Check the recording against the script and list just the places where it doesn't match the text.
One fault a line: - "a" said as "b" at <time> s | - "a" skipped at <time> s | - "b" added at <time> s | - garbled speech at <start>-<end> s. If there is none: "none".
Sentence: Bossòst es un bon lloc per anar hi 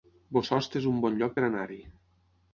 none